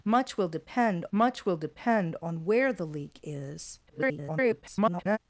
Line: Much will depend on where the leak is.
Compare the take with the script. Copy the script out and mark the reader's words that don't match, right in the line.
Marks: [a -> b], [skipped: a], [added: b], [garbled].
Much will depend [added: much will depend] on where the leak is. [garbled]